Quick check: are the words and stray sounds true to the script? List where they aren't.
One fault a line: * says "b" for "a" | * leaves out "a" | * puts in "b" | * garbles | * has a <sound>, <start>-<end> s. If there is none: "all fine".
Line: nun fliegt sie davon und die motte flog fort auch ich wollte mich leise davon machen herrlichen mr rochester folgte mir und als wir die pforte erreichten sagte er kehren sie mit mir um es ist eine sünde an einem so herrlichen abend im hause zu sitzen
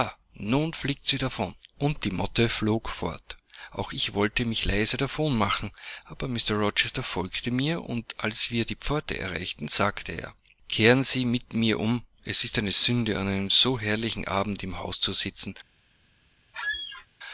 * says "aber" for "herrlichen"
* has a squeak, 16.5-17.1 s